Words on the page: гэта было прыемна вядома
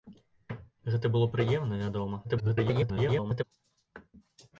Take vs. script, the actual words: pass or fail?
fail